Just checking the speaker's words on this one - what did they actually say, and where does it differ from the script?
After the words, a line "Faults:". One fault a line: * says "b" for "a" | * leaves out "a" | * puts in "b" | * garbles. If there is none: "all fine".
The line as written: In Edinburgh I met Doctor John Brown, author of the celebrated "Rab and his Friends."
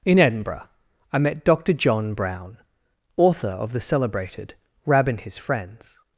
In Edinburgh I met Doctor John Brown, author of the celebrated "Rab and his Friends."
Faults:
all fine